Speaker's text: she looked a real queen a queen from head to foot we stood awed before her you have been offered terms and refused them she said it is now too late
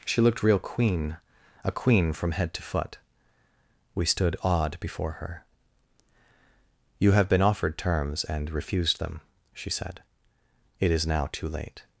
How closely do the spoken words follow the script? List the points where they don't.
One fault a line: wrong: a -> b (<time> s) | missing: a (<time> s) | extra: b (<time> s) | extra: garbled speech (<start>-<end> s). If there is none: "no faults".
missing: a (0.4 s)